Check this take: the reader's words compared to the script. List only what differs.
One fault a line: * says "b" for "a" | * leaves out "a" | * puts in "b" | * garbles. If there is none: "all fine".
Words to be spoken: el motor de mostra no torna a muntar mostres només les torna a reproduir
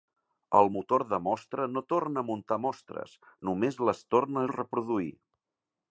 all fine